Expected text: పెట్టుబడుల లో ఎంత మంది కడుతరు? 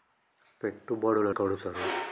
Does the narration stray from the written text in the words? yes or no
yes